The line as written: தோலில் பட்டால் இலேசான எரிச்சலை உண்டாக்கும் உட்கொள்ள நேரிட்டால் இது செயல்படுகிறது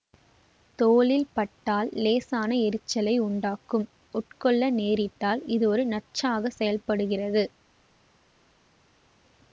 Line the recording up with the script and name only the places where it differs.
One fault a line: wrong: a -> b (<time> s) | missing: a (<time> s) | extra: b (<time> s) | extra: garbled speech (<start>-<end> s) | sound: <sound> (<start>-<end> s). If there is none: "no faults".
extra: ஒரு நச்சாக (5.7 s)